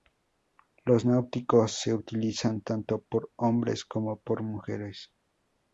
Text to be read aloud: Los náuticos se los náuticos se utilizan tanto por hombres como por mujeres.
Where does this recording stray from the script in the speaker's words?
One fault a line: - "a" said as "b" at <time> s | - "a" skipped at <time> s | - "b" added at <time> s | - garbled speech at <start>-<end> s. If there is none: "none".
- "los náuticos se" skipped at 1.9 s